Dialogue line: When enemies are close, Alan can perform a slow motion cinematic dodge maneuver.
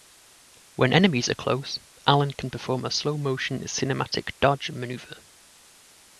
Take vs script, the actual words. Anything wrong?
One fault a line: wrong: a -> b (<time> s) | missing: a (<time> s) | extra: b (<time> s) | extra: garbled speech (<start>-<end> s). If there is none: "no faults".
no faults